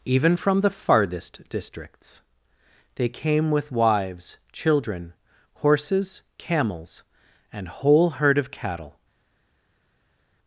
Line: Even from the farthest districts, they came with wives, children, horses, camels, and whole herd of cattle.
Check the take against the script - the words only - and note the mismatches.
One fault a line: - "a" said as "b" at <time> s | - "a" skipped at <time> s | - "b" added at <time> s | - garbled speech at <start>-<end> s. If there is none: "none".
none